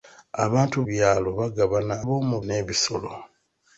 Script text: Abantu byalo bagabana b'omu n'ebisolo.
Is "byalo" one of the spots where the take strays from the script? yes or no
no